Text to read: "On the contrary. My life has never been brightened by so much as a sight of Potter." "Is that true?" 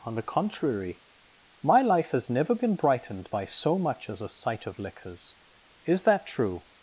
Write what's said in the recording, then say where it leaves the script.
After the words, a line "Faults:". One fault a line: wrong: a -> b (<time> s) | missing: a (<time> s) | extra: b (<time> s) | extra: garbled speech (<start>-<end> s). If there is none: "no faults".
"On the contrary. My life has never been brightened by so much as a sight of Liquors." "Is that true?"
Faults:
wrong: Potter -> Liquors (4.8 s)